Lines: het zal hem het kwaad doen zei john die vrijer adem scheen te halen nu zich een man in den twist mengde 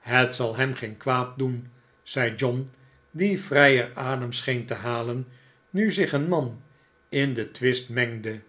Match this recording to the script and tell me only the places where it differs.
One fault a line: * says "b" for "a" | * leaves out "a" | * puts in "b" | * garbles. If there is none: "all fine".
* says "geen" for "het"